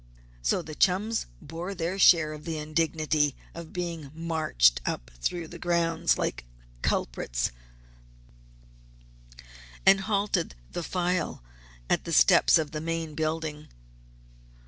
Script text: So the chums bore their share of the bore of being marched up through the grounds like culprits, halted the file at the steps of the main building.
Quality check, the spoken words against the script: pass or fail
fail